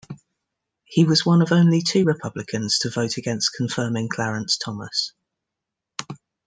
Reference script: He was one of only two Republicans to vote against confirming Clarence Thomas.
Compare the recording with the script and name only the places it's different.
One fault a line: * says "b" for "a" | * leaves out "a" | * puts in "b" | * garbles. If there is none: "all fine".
all fine